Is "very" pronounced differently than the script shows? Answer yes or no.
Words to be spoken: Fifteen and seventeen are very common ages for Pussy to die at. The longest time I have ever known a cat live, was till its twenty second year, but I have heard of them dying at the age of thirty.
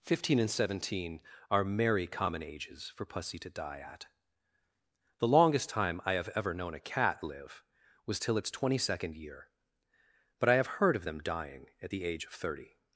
yes